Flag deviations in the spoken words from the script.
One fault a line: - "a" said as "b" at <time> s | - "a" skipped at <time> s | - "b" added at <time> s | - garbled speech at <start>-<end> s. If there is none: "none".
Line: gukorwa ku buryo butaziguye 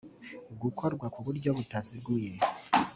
none